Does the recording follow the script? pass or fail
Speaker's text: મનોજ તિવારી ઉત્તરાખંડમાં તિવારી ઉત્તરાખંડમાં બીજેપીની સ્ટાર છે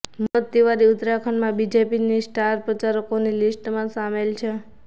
fail